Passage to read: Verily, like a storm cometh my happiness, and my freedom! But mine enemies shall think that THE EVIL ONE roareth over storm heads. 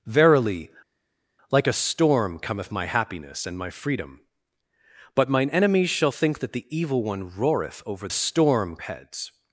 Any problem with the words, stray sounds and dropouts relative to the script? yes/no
no